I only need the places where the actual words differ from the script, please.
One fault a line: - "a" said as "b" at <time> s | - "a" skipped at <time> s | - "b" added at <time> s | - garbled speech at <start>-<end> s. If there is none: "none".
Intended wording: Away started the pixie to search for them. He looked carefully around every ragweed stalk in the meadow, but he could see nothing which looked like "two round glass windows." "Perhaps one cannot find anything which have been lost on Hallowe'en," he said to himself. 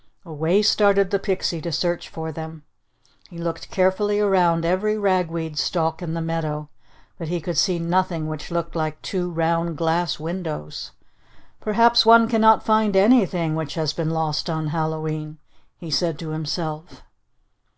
- "have" said as "has" at 13.7 s